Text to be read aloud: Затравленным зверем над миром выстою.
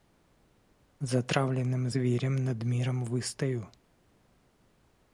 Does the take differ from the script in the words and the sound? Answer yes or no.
no